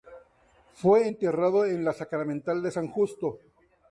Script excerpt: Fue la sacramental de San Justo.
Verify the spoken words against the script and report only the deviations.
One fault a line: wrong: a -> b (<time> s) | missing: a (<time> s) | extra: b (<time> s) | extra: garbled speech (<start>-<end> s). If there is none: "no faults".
extra: enterrado en (1.0 s)